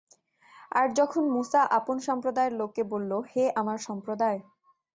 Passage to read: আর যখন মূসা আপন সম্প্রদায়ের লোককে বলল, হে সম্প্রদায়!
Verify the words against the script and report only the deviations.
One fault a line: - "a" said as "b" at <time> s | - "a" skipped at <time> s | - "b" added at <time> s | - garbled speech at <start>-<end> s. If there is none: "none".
- "আমার" added at 3.6 s